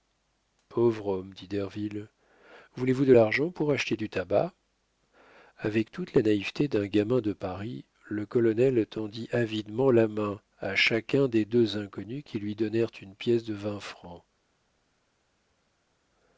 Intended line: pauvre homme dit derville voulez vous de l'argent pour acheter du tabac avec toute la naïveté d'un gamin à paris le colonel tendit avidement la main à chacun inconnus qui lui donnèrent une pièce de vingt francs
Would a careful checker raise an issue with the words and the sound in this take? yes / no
yes